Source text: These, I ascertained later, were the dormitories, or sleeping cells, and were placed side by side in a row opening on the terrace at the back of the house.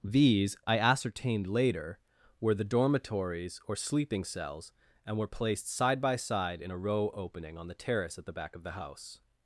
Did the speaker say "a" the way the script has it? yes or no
yes